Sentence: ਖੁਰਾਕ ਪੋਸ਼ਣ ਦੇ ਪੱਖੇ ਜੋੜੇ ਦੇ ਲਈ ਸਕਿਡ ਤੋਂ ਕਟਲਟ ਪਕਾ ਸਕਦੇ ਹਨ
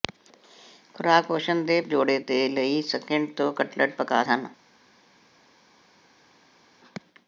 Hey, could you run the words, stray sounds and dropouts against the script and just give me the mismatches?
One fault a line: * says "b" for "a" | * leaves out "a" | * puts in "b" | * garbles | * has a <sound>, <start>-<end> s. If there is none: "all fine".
* leaves out "ਪੱਖੇ"
* leaves out "ਸਕਦੇ"